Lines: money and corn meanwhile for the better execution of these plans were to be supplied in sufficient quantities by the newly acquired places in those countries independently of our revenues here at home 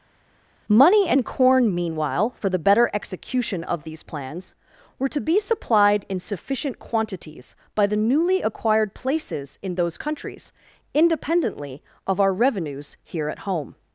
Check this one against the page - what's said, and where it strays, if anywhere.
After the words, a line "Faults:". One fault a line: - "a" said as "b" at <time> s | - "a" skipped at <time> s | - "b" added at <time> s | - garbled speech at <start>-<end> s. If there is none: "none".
money and corn meanwhile for the better execution of these plans were to be supplied in sufficient quantities by the newly acquired places in those countries independently of our revenues here at home
Faults:
none